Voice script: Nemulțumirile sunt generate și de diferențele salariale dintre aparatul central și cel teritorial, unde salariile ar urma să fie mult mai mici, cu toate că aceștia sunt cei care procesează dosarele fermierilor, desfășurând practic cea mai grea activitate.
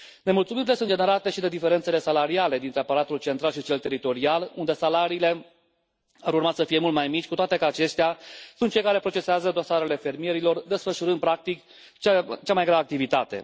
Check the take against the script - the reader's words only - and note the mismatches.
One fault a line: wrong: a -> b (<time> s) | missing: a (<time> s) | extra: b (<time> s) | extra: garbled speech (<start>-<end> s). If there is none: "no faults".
no faults